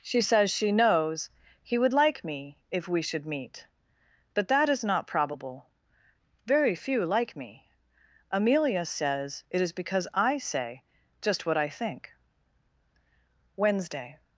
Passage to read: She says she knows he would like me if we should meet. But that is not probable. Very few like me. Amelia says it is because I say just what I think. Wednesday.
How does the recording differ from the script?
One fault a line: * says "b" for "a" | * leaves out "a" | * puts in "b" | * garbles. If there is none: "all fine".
all fine